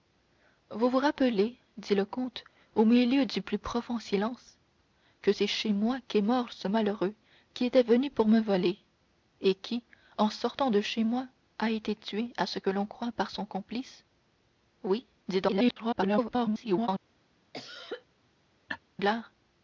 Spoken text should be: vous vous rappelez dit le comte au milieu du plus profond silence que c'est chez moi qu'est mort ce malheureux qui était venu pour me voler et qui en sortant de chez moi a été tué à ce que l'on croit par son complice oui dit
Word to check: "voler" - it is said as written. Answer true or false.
true